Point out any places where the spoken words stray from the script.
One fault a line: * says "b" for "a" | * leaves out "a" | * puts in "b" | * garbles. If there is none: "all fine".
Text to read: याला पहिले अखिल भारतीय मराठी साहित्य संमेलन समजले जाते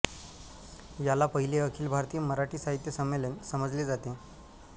all fine